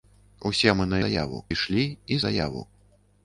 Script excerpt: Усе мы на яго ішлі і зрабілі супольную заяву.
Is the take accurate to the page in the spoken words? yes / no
no